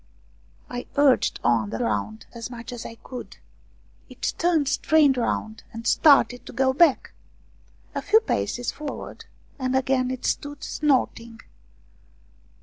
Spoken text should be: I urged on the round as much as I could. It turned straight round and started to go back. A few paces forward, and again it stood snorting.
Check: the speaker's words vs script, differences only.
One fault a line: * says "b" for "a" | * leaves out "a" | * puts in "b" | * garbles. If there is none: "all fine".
all fine